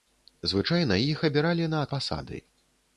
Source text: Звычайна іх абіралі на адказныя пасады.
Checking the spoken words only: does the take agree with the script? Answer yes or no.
no